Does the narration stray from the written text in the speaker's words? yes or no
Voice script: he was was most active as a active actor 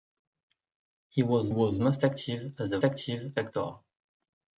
no